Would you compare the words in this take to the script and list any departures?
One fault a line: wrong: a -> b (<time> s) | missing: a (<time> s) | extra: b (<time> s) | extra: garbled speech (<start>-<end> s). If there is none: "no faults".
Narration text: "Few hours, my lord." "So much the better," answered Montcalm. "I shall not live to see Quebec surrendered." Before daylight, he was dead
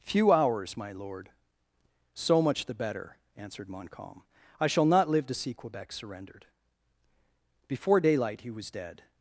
no faults